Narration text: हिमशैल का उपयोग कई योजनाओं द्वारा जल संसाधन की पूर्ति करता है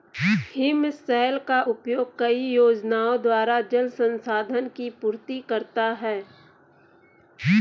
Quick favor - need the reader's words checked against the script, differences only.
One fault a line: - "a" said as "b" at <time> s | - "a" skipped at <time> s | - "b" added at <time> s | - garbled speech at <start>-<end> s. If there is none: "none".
none